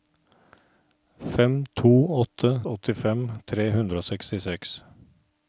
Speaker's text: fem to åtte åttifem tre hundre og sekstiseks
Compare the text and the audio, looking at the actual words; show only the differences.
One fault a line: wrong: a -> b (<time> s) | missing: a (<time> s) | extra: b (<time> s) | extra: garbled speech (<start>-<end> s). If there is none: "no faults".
no faults